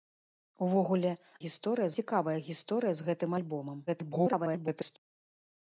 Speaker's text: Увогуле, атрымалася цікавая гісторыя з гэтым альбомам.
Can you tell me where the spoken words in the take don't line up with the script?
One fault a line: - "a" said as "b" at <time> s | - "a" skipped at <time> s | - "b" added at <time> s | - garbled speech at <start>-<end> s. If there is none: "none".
- "атрымалася" said as "гісторыя" at 1.4 s
- garbled speech at 3.9-5.0 s